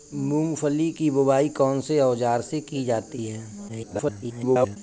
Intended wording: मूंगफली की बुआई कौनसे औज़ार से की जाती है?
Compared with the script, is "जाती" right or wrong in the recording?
right